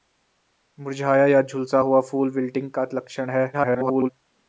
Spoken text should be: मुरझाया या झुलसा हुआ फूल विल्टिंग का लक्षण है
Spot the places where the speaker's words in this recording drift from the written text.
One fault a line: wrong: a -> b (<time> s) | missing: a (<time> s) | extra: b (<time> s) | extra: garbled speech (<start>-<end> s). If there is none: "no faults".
extra: garbled speech (3.5-4.1 s)